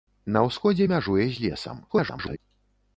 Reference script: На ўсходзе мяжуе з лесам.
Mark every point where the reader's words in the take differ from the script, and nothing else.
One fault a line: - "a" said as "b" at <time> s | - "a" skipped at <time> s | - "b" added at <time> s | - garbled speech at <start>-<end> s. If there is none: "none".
- garbled speech at 1.9-2.4 s